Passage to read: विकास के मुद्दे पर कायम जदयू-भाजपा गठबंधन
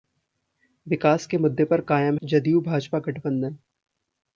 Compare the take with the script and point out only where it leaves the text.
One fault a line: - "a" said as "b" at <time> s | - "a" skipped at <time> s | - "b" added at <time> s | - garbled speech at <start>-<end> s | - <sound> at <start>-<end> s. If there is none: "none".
none